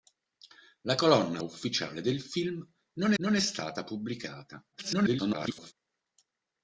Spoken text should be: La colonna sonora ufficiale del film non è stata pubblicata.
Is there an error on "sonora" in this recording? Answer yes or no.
yes